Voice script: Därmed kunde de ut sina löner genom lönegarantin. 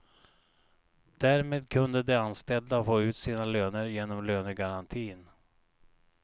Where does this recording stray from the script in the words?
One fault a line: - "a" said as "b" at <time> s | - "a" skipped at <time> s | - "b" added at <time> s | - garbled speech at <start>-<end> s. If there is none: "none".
- "anställda få" added at 2.1 s